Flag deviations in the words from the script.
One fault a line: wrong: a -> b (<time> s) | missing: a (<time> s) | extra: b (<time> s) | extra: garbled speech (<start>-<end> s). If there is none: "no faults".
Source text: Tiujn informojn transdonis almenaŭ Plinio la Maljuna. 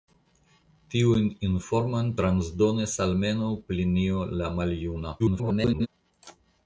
extra: garbled speech (5.2-5.9 s)